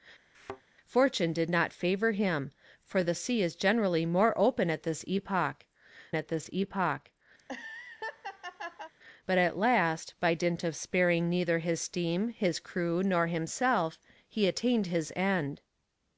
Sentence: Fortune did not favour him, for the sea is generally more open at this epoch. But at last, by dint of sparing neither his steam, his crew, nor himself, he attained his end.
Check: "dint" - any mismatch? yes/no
no